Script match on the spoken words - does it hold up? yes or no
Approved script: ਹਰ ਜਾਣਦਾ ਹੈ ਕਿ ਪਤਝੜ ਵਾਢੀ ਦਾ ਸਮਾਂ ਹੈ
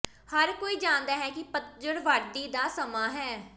no